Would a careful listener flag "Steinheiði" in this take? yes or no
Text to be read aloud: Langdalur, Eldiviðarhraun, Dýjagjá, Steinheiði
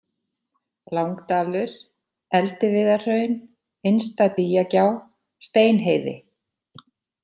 no